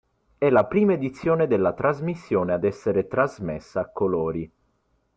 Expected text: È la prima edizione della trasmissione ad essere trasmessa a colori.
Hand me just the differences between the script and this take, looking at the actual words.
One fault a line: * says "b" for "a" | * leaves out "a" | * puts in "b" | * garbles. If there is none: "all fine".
all fine